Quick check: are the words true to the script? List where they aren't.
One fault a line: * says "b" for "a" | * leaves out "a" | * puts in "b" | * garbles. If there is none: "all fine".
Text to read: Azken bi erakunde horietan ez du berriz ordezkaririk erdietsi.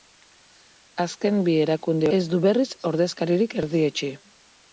* leaves out "horietan"